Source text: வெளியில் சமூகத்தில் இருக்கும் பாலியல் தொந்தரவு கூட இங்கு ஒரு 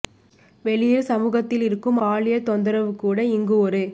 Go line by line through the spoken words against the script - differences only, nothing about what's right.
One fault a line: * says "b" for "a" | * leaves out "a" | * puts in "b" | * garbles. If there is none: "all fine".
all fine